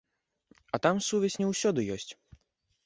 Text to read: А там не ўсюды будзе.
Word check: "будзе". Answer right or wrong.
wrong